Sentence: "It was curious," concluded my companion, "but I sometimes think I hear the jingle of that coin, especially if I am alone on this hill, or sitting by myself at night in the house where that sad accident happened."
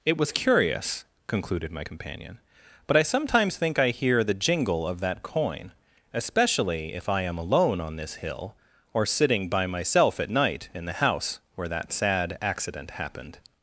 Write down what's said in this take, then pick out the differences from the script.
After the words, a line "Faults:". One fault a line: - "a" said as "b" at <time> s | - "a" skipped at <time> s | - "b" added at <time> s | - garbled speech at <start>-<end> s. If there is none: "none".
"It was curious," concluded my companion, "but I sometimes think I hear the jingle of that coin, especially if I am alone on this hill, or sitting by myself at night in the house where that sad accident happened."
Faults:
none